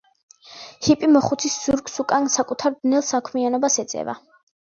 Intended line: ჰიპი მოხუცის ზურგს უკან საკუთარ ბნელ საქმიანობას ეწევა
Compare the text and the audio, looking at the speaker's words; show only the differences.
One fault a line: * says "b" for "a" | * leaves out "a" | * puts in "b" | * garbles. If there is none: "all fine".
all fine